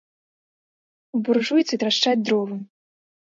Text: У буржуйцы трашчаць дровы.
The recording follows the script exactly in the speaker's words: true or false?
true